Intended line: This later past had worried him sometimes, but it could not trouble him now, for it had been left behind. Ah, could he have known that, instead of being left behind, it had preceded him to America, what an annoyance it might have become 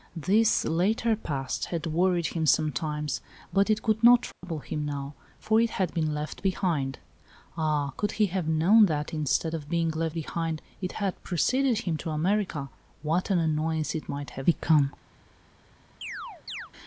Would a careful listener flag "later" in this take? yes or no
no